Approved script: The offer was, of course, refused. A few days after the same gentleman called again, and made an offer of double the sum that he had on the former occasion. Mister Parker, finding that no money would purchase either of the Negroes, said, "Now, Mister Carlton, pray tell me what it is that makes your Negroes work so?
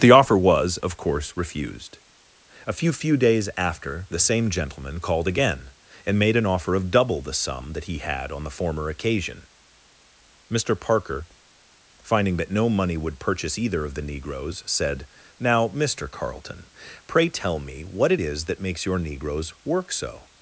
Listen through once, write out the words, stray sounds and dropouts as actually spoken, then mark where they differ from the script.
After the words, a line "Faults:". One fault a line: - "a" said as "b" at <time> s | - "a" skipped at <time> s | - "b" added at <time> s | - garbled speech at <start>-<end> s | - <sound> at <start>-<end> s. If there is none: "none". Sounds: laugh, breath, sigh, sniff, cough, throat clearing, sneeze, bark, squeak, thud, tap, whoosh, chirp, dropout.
The offer was, of course, refused. A few few days after the same gentleman called again, and made an offer of double the sum that he had on the former occasion. Mister Parker, finding that no money would purchase either of the Negroes, said, "Now, Mister Carlton, pray tell me what it is that makes your Negroes work so?
Faults:
- "few" added at 2.9 s